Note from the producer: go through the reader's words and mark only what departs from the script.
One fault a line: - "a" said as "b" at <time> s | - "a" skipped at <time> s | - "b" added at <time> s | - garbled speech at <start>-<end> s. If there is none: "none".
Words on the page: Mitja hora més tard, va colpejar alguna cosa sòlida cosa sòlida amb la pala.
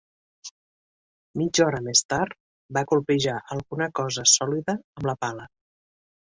- "cosa sòlida" skipped at 4.8 s